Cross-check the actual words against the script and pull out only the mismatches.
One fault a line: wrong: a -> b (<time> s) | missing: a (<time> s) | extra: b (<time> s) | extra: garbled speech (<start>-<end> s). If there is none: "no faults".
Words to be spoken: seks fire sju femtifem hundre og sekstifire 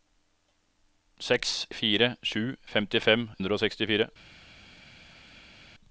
no faults